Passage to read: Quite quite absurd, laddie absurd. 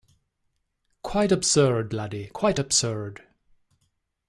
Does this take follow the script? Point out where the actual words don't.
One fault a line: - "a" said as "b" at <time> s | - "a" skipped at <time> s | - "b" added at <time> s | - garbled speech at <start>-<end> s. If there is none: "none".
- "quite" skipped at 1.3 s
- "quite" added at 2.3 s